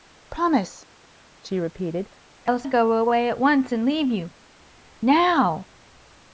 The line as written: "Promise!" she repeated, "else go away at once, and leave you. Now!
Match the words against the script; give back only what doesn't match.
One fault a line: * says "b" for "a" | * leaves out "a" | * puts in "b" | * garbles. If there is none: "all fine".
all fine